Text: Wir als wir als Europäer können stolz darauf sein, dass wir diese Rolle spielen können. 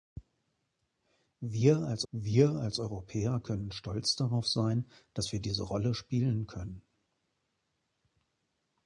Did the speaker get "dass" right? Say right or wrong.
right